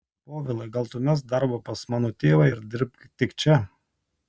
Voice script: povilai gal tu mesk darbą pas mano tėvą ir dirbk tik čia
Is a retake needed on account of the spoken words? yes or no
no